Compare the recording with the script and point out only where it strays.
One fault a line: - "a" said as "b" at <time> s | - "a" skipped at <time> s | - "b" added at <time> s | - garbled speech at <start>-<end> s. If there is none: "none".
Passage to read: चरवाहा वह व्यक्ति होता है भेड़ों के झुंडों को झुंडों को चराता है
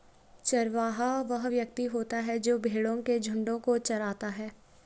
- "जो" added at 2.4 s
- "झुंडों को" skipped at 3.8 s